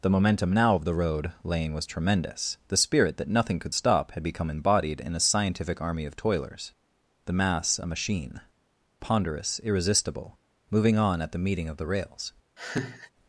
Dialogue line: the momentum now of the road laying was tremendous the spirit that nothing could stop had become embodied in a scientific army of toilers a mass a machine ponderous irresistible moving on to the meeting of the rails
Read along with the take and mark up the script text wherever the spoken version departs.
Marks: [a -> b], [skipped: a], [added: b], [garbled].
the momentum now of the road laying was tremendous the spirit that nothing could stop had become embodied in a scientific army of toilers [a -> the] mass a machine ponderous irresistible moving on [to -> at] the meeting of the rails